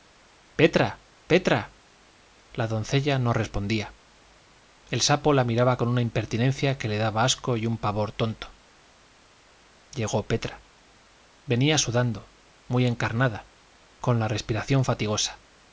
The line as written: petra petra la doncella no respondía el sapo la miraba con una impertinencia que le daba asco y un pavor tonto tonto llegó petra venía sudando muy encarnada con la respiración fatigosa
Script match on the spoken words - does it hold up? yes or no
no